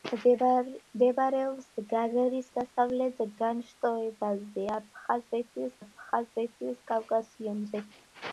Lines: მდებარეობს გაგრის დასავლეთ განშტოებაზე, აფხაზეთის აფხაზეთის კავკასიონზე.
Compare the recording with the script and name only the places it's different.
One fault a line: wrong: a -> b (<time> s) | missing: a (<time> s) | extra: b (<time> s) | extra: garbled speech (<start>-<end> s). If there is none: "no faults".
no faults